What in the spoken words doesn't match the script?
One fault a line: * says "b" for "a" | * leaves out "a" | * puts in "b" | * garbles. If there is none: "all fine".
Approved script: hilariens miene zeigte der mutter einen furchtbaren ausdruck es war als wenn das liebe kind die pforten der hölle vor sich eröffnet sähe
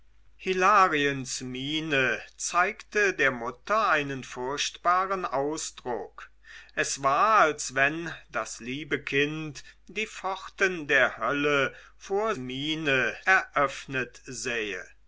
* says "miene" for "sich"